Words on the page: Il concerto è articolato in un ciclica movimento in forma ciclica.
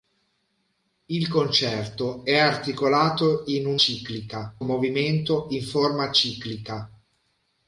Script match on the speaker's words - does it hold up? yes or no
yes